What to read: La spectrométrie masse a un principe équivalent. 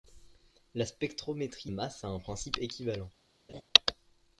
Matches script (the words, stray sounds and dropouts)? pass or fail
fail